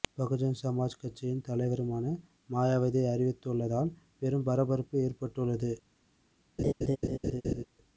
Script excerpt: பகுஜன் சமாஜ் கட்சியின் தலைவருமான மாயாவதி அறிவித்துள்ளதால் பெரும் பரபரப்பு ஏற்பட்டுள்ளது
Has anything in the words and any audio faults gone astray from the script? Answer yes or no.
yes